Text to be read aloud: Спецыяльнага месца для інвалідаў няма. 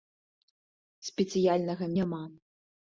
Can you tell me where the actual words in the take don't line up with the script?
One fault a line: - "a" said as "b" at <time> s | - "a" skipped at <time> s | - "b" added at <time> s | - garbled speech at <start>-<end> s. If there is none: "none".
- "месца для інвалідаў" skipped at 1.9 s